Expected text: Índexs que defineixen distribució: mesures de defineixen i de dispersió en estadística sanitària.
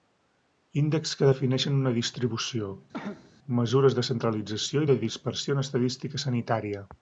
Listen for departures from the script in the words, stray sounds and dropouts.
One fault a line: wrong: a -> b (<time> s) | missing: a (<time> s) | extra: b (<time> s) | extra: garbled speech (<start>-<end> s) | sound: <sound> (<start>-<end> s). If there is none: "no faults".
extra: una (1.8 s)
sound: cough (2.9-3.3 s)
wrong: defineixen -> centralització (4.1 s)